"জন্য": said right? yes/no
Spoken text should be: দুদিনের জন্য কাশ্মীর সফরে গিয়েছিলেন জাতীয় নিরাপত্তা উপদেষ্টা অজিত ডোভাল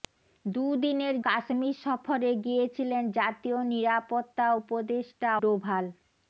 no